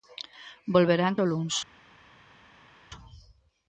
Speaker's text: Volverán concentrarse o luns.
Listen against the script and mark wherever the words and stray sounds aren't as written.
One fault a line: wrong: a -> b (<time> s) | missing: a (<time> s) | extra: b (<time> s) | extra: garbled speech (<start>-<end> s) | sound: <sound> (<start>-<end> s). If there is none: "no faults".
missing: concentrarse (1.2 s)